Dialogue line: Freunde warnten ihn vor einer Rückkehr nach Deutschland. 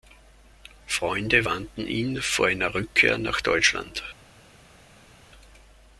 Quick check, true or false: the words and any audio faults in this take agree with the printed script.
true